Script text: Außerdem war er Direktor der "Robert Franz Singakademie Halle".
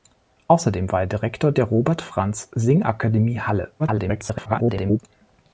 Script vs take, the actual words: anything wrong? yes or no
yes